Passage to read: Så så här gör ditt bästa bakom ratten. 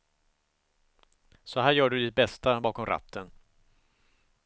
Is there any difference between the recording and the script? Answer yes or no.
yes